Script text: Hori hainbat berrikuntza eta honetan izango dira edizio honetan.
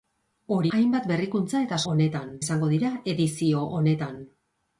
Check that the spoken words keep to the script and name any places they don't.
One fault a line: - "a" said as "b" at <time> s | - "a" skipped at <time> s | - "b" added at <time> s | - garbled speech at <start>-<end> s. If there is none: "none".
none